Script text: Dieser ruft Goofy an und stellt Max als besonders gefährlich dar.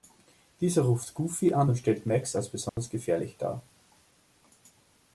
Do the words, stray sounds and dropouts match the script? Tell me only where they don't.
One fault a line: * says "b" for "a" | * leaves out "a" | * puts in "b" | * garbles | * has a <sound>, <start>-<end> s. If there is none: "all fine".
* has a dropout, 2.7-2.8 s